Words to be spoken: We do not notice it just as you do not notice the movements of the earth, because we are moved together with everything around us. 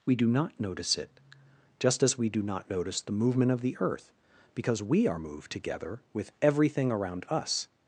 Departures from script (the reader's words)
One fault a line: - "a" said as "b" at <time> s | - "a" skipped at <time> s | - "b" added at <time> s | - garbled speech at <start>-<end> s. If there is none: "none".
- "you" said as "we" at 2.2 s
- "movements" said as "movement" at 3.1 s